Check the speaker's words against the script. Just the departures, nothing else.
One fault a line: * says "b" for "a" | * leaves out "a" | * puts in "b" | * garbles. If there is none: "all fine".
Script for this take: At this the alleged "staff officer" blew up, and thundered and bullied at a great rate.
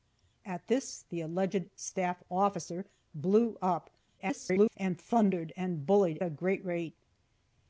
* garbles
* leaves out "at"